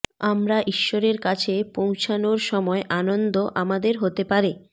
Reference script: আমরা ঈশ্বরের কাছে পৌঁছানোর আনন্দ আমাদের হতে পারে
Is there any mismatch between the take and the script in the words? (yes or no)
yes